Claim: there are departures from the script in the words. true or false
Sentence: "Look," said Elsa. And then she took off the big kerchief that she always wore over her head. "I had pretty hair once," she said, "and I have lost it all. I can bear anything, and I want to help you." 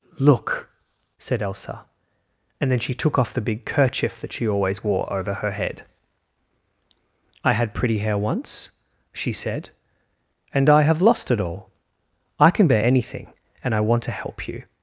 false